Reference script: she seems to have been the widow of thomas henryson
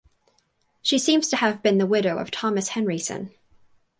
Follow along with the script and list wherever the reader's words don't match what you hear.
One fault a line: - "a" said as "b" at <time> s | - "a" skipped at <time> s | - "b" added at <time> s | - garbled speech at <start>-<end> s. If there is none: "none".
none